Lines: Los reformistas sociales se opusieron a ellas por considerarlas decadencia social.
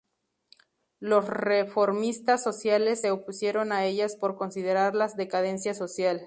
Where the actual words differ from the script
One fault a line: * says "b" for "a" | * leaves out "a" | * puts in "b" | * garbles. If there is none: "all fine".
all fine